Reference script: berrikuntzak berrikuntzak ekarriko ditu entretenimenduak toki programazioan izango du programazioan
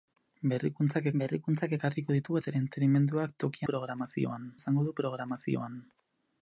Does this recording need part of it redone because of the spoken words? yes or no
no